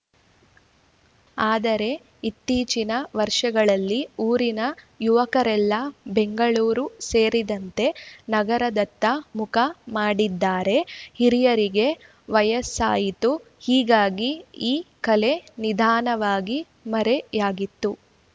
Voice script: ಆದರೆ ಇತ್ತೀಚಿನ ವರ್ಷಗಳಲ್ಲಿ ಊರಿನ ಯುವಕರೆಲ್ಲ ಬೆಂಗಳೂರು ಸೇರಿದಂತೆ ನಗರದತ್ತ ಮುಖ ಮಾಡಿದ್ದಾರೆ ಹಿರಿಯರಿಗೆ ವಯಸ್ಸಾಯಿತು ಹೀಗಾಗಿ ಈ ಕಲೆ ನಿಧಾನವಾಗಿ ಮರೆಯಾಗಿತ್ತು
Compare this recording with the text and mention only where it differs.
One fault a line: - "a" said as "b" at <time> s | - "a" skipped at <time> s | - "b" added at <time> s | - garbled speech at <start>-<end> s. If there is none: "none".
none